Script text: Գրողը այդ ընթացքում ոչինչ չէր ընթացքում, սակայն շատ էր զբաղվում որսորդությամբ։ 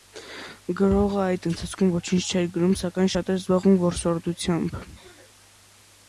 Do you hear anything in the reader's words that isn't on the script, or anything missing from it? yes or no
yes